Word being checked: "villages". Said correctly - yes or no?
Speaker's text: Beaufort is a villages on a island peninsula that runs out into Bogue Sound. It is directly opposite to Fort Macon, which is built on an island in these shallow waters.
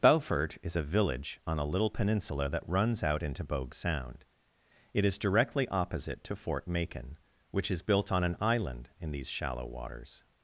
no